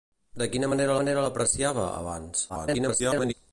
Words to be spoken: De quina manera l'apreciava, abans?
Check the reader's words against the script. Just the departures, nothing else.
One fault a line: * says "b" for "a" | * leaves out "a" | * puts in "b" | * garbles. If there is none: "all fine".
* puts in "manera"
* garbles